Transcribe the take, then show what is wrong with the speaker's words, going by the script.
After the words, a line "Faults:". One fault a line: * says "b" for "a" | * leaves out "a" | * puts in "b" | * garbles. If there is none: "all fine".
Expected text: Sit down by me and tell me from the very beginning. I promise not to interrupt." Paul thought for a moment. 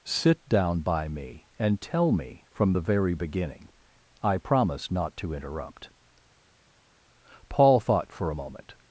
Sit down by me and tell me from the very beginning. I promise not to interrupt." Paul thought for a moment.
Faults:
all fine